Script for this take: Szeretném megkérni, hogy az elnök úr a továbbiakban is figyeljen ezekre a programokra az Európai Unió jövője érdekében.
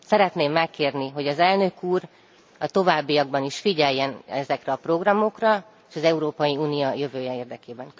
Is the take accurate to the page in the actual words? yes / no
yes